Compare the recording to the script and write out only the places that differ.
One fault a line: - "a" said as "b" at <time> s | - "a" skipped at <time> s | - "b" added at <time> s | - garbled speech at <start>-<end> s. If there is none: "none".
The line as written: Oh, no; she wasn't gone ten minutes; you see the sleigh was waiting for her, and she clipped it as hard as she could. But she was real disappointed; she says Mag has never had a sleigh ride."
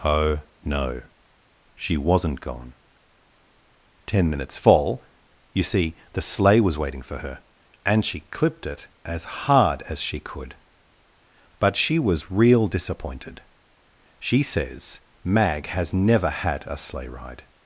- "fall" added at 4.6 s